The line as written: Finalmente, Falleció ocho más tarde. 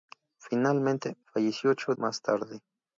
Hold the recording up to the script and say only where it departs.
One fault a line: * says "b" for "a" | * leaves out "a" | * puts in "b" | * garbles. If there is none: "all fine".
all fine